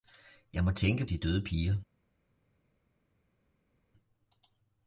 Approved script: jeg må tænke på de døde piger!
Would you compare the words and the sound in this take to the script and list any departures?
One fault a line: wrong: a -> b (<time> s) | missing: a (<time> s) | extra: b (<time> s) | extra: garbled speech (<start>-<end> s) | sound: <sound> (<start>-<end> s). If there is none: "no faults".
missing: på (1.1 s)